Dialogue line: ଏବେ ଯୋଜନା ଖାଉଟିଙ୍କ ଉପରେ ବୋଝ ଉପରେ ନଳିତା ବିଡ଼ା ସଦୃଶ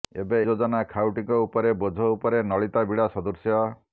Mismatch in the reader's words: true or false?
false